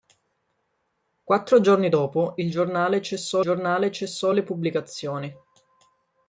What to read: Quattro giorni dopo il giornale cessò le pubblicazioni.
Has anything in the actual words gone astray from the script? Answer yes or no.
yes